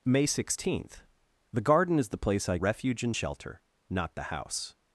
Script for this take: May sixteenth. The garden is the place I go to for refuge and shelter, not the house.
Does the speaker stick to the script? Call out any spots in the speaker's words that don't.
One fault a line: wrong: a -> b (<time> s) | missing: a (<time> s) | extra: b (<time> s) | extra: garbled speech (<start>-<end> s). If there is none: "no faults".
missing: go to for (2.6 s)